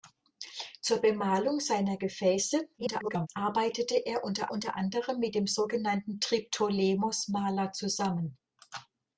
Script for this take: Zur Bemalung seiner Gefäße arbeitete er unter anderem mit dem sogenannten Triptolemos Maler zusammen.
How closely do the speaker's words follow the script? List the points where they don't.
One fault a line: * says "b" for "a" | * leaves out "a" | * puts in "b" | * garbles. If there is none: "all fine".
* garbles
* puts in "unter"